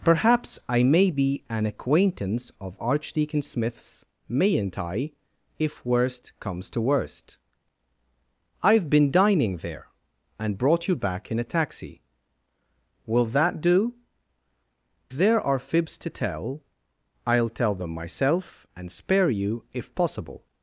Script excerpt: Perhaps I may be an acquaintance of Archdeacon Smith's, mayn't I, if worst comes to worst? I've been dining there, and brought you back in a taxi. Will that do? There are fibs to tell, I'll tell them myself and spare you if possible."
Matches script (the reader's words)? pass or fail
pass